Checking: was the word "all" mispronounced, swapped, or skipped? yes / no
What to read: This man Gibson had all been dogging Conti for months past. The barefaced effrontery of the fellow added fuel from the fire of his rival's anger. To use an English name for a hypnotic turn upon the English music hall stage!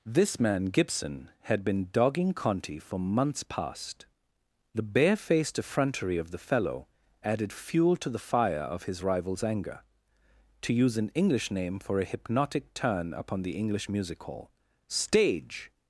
yes